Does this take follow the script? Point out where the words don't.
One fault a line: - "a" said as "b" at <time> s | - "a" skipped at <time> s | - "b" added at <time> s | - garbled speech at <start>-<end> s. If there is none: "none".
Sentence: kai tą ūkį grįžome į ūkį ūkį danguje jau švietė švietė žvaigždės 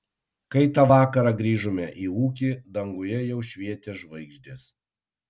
- "ūkį" said as "vakarą" at 0.9 s
- "ūkį" skipped at 2.5 s
- "švietė" skipped at 4.0 s